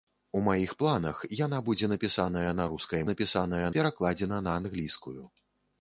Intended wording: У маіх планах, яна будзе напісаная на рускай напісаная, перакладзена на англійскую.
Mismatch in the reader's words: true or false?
false